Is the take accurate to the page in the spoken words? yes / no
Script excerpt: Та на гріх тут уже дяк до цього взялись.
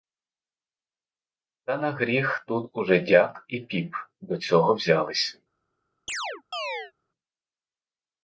no